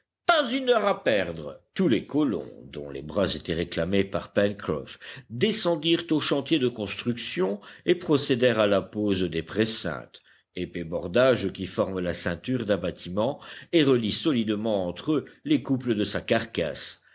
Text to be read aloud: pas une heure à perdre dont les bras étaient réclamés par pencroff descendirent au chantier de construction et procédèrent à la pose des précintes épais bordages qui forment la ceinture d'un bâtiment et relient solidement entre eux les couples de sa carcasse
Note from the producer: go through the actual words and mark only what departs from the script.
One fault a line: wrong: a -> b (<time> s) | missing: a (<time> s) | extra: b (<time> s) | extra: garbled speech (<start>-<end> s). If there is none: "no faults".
extra: tous les colons (1.8 s)